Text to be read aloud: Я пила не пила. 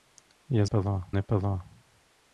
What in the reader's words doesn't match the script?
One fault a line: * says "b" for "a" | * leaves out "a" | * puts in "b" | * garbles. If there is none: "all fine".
all fine